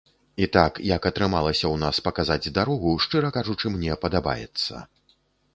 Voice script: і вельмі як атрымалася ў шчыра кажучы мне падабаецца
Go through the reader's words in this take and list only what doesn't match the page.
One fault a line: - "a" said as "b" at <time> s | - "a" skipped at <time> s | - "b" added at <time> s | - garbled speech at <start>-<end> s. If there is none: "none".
- "вельмі" said as "так" at 0.6 s
- "нас паказаць дарогу" added at 1.8 s